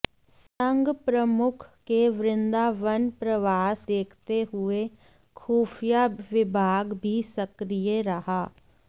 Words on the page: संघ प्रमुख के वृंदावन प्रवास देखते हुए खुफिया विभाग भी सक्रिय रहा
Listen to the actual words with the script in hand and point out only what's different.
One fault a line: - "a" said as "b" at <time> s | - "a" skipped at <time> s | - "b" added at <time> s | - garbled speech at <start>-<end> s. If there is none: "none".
none